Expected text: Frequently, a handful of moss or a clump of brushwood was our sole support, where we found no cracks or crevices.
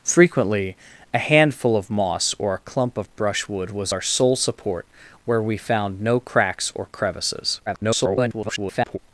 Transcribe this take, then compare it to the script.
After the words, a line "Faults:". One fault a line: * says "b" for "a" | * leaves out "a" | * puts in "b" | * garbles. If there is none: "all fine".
Frequently, a handful of moss or a clump of brushwood was our sole support, where we found no cracks or crevices. [garbled]
Faults:
* garbles